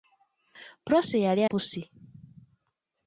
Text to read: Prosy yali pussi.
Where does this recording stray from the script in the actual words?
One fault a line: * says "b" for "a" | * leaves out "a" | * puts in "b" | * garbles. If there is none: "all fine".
all fine